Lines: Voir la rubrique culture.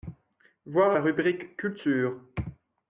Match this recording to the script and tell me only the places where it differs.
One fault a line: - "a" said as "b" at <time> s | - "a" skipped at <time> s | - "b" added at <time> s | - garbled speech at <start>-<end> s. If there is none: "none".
none